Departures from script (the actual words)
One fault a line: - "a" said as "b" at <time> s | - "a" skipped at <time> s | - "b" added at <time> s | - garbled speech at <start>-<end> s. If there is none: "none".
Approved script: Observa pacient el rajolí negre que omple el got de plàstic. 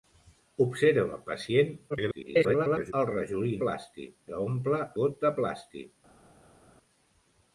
- garbled speech at 1.9-2.9 s
- "negre" said as "plàstic" at 3.7 s
- "el" skipped at 4.8 s